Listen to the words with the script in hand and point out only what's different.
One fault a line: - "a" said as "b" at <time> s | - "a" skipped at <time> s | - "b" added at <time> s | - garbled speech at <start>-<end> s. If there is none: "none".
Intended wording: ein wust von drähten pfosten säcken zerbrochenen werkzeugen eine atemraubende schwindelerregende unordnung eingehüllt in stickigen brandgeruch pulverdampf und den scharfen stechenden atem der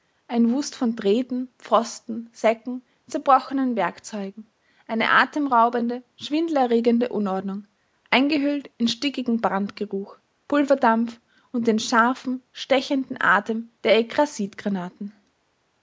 none